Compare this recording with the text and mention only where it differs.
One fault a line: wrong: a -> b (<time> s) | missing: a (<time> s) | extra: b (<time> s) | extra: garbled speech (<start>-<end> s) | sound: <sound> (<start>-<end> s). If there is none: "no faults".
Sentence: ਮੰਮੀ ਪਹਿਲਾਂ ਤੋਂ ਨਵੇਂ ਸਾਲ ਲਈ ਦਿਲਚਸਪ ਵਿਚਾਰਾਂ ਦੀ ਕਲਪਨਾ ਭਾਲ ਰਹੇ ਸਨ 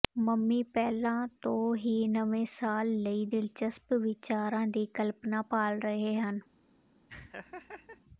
extra: ਹੀ (1.8 s)
wrong: ਸਨ -> ਹਨ (6.2 s)
sound: laugh (7.1-8.0 s)